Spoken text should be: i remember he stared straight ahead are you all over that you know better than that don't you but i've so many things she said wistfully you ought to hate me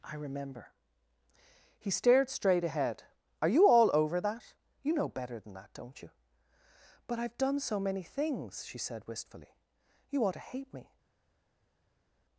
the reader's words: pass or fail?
fail